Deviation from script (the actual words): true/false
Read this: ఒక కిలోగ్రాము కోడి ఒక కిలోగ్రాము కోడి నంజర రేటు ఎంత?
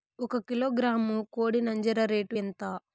true